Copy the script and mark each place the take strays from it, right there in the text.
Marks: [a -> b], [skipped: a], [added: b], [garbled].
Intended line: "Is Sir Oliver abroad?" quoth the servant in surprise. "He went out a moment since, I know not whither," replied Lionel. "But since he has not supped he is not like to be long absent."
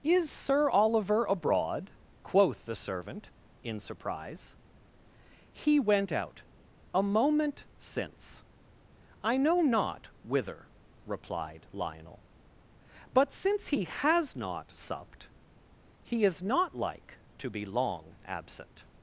"Is Sir Oliver abroad?" quoth the servant in surprise. "He went out a moment since, I know not whither," replied Lionel. "But since he has not supped he is not like to be long absent."